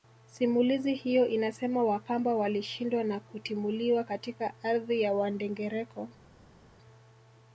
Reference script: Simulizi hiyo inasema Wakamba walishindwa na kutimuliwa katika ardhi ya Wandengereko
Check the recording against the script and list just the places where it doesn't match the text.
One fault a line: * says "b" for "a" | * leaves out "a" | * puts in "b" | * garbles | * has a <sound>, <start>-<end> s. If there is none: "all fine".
all fine